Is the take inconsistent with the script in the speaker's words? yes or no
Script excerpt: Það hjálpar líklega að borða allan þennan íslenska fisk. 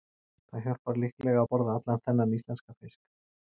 no